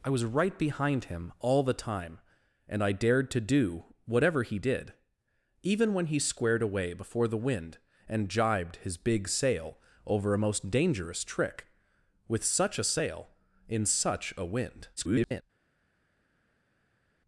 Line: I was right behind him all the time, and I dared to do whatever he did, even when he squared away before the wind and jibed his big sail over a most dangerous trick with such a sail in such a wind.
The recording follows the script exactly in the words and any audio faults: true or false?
false